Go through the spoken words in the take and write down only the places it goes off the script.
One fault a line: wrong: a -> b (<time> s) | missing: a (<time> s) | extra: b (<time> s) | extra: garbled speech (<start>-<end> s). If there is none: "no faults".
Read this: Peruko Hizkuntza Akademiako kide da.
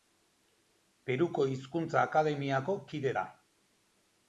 no faults